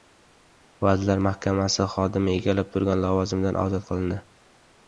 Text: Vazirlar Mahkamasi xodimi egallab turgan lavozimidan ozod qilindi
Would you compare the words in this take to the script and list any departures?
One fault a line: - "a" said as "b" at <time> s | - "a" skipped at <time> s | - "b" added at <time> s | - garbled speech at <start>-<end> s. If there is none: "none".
none